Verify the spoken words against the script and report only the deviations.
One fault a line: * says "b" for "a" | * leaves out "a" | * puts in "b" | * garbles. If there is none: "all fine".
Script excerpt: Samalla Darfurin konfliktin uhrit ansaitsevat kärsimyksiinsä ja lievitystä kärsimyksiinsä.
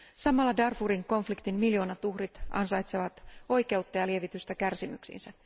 * puts in "miljoonat"
* says "oikeutta" for "kärsimyksiinsä"